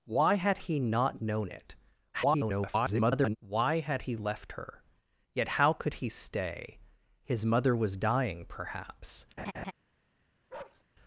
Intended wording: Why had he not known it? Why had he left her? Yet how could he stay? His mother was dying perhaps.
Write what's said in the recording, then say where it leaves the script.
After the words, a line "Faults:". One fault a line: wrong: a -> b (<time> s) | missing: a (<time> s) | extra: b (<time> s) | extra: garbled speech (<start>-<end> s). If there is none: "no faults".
Why had he not known it? [garbled] Why had he left her? Yet how could he stay? His mother was dying perhaps.
Faults:
extra: garbled speech (2.1-3.4 s)